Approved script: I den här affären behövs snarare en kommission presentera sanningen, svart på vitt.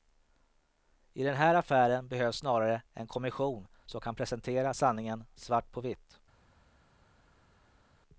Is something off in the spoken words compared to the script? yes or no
yes